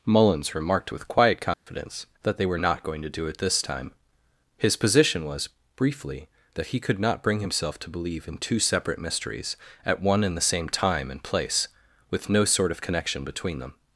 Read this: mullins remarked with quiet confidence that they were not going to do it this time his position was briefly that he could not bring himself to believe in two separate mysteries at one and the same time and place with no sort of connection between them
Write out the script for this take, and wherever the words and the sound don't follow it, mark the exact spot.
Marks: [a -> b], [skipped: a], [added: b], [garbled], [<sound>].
mullins remarked with quiet confidence [dropout] that they were not going to do it this time his position was briefly that he could not bring himself to believe in two separate mysteries at one and the same time and place with no sort of connection between them